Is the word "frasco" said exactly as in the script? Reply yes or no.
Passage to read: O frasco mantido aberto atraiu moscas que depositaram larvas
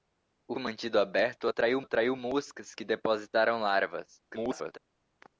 no